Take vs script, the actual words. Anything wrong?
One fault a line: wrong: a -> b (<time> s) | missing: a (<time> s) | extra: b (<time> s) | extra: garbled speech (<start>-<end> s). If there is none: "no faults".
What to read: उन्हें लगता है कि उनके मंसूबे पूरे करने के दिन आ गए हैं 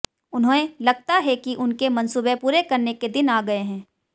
no faults